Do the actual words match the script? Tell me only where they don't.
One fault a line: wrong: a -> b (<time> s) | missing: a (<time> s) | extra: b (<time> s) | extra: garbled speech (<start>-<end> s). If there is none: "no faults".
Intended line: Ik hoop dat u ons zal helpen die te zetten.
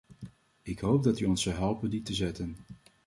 no faults